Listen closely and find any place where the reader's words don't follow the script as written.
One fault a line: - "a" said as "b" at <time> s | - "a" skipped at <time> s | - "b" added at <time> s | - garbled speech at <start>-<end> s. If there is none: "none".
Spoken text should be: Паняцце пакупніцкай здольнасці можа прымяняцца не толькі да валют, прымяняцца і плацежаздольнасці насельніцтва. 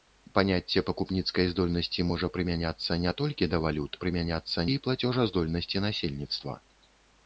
none